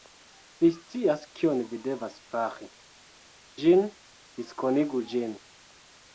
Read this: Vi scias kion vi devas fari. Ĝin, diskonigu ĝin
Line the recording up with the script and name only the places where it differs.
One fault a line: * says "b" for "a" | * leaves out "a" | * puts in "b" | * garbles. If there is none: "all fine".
all fine